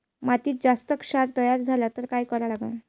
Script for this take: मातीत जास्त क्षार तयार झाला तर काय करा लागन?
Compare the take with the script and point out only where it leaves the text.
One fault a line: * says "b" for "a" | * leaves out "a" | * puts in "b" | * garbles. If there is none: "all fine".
all fine